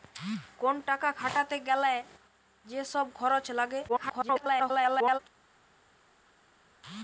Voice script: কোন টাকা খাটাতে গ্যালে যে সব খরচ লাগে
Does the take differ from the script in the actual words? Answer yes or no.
yes